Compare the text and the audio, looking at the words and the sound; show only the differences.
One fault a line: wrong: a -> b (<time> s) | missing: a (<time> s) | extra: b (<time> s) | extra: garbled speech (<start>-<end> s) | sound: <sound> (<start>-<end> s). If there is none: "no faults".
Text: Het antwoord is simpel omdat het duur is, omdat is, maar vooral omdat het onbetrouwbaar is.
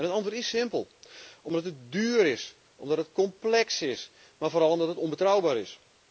extra: het complex (3.0 s)